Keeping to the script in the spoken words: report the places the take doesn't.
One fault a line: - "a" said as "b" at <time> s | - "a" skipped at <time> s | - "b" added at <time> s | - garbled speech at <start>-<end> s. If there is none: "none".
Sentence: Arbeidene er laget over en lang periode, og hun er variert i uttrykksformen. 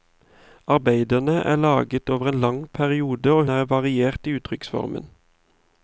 - "hun" skipped at 3.5 s